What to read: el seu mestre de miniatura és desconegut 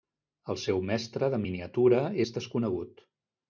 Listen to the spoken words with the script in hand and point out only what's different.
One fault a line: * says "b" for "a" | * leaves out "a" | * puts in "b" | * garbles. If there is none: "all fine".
all fine